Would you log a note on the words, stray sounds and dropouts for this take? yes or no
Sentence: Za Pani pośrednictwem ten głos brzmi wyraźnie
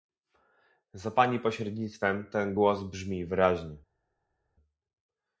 no